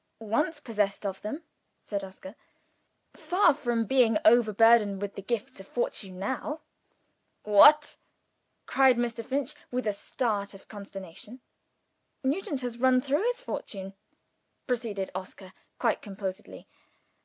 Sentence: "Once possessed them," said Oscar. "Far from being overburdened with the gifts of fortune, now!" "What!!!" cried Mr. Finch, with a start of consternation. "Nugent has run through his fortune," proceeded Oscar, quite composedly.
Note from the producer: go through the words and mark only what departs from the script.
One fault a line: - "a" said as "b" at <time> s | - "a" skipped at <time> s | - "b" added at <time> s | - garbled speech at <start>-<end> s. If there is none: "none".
- "of" added at 1.1 s